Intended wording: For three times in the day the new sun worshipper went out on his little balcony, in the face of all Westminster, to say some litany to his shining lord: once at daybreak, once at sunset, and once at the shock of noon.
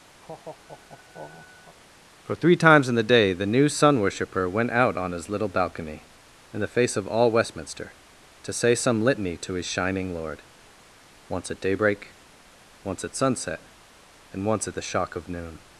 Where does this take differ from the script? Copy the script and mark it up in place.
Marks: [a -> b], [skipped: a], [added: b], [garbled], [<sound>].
[laugh] For three times in the day the new sun worshipper went out on his little balcony, in the face of all Westminster, to say some litany to his shining lord: once at daybreak, once at sunset, and once at the shock of noon.